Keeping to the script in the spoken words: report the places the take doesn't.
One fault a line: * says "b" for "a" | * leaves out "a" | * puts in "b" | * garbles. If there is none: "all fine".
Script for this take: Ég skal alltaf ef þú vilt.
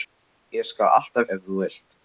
all fine